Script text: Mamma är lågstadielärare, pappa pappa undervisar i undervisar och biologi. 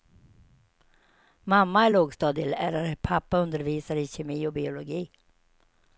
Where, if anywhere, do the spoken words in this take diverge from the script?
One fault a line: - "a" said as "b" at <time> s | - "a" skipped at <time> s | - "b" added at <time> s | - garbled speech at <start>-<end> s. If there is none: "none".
- "pappa" skipped at 3.4 s
- "undervisar" said as "kemi" at 4.1 s